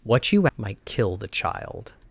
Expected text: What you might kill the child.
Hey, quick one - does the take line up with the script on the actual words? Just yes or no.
yes